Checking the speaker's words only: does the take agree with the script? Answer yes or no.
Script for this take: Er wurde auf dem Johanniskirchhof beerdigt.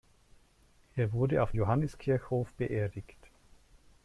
no